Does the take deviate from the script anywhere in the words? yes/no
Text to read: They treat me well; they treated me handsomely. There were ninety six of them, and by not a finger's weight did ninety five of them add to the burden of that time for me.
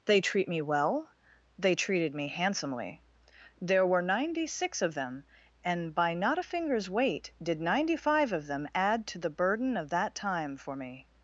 no